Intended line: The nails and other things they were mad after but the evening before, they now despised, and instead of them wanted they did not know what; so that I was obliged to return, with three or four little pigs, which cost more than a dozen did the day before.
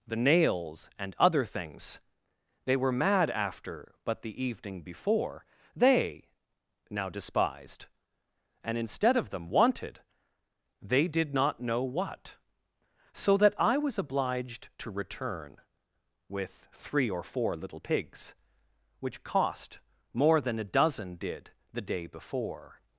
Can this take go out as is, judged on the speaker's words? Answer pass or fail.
pass